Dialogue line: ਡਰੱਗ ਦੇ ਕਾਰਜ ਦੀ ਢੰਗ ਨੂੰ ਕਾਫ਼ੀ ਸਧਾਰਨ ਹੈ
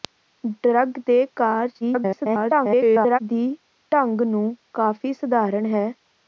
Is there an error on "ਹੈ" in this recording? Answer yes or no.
no